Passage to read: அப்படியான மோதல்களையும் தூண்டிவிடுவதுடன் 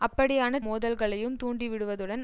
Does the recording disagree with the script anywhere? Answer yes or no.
no